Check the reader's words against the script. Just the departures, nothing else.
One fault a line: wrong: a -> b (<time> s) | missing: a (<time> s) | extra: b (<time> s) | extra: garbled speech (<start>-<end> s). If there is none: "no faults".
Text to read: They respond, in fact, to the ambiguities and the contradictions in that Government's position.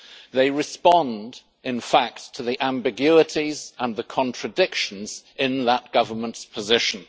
no faults